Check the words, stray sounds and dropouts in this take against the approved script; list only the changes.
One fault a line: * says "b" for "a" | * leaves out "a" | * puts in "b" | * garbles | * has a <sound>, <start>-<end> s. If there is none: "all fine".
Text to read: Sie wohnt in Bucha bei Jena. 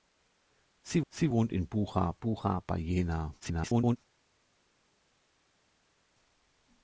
* puts in "sie"
* puts in "Bucha"
* garbles